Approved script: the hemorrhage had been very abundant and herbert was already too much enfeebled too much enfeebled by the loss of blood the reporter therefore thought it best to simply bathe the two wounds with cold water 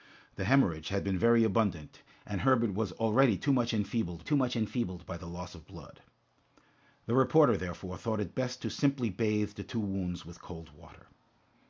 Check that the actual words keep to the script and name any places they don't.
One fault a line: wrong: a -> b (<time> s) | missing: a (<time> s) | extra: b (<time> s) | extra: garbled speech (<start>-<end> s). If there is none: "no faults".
no faults